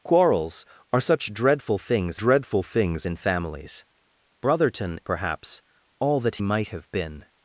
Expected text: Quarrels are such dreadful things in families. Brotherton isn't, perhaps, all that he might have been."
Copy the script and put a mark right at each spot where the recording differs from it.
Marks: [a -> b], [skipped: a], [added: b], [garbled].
Quarrels are such dreadful things [added: dreadful things] in families. Brotherton [skipped: isn't,] perhaps, all that [skipped: he] might have been."